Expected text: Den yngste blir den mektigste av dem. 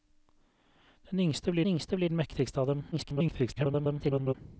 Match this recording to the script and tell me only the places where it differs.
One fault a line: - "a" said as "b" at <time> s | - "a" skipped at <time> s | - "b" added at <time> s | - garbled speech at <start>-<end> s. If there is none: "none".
- "yngste blir" added at 1.7 s
- garbled speech at 2.9-4.3 s